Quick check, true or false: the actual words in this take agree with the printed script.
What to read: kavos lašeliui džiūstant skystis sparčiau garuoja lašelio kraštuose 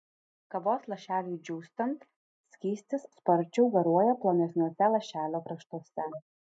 false